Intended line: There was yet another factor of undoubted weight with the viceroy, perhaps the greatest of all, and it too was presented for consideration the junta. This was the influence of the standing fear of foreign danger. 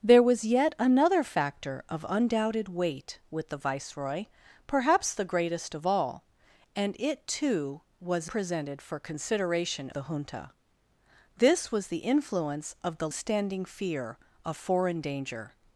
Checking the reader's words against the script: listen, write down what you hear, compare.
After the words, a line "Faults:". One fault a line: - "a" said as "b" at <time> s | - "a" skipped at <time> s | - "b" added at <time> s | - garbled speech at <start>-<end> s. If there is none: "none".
There was yet another factor of undoubted weight with the viceroy, perhaps the greatest of all, and it too was presented for consideration the junta. This was the influence of the standing fear of foreign danger.
Faults:
none